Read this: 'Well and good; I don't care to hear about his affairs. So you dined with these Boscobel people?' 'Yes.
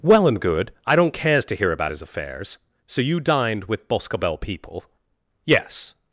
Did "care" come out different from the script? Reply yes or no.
yes